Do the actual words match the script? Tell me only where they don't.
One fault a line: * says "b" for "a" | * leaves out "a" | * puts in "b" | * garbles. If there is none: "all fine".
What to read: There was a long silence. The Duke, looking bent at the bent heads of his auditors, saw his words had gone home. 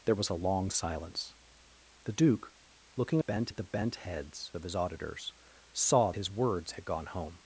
all fine